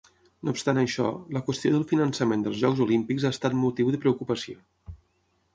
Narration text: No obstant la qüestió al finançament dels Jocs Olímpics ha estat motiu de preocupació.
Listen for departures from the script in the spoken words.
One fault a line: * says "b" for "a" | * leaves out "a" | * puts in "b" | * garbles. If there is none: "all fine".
* puts in "això"
* says "del" for "al"